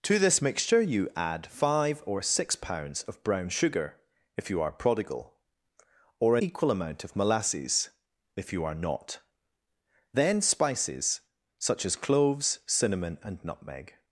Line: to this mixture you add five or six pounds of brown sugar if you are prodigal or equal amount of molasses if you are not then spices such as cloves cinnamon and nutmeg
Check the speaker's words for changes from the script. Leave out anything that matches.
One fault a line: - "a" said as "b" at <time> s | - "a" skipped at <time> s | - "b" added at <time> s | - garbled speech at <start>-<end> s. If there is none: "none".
none